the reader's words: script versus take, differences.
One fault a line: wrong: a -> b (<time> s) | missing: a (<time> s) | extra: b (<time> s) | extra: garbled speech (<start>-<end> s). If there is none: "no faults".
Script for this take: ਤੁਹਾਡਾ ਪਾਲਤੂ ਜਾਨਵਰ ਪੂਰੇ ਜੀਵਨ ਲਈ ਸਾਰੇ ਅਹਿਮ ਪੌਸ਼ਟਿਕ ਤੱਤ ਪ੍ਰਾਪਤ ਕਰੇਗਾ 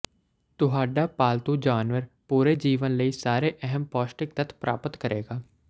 no faults